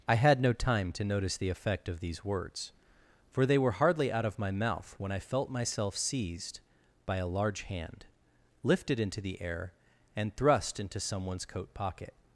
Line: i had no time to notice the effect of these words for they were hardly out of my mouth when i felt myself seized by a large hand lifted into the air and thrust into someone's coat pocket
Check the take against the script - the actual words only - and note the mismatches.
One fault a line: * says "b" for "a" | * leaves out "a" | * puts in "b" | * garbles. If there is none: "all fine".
all fine